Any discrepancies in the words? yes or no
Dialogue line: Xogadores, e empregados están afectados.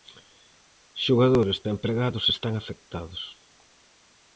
no